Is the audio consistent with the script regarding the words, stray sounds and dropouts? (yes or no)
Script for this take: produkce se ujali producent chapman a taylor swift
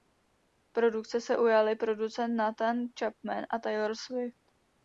no